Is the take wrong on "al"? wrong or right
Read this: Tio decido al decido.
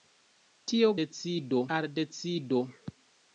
right